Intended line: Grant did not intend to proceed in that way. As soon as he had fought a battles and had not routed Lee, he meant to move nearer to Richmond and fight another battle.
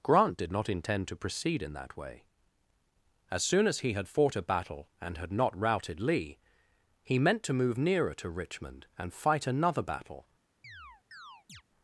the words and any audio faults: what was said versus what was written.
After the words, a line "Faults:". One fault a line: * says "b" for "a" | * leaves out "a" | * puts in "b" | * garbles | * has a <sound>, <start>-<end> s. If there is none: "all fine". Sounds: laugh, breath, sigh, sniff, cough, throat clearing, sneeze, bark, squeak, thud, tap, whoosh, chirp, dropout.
Grant did not intend to proceed in that way. As soon as he had fought a battle and had not routed Lee, he meant to move nearer to Richmond and fight another battle.
Faults:
* says "battle" for "battles"
* has a chirp, 10.6-11.6 s